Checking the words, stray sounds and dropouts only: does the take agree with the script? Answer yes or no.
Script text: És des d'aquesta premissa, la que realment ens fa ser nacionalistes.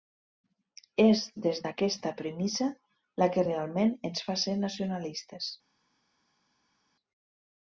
yes